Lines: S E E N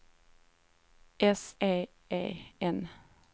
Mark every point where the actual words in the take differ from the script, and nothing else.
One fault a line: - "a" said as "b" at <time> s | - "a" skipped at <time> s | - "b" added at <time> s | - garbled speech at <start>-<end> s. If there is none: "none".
none